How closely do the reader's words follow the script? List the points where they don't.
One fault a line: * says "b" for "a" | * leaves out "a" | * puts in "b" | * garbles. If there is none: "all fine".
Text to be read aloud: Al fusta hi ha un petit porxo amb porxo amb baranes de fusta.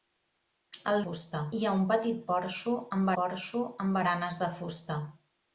all fine